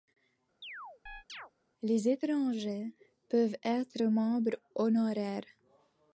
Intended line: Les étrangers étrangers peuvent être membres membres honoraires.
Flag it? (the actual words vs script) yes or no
yes